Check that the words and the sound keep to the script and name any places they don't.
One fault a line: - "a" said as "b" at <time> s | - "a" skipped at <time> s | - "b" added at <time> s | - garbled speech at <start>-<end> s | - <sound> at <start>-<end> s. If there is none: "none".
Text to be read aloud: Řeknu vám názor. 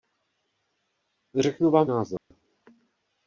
- dropout at 2.2-2.3 s